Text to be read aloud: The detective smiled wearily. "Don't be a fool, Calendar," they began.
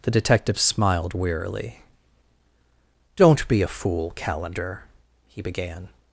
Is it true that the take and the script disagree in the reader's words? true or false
true